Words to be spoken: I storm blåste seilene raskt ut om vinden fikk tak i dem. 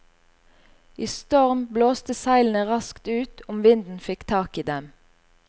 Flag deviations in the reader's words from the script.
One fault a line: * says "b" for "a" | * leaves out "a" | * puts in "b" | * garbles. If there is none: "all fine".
all fine